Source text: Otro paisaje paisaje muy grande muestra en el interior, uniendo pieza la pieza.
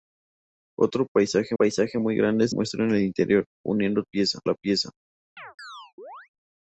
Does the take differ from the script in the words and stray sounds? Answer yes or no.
yes